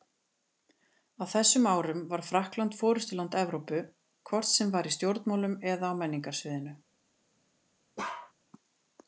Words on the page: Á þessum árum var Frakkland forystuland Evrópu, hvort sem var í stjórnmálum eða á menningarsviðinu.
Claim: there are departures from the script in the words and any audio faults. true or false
true